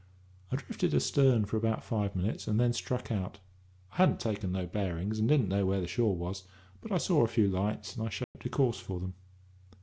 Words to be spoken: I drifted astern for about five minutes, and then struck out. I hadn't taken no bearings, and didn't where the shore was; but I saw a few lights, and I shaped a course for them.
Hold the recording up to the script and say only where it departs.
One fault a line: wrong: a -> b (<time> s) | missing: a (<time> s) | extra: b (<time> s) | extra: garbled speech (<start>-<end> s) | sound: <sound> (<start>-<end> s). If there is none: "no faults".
extra: know (5.5 s)
sound: dropout (8.2-8.3 s)